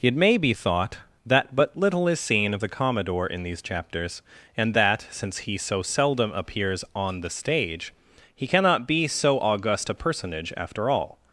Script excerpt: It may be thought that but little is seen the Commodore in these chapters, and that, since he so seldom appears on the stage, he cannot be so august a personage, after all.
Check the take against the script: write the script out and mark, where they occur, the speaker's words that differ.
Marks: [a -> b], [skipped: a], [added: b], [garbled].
It may be thought that but little is seen [added: of] the Commodore in these chapters, and that, since he so seldom appears on the stage, he cannot be so august a personage, after all.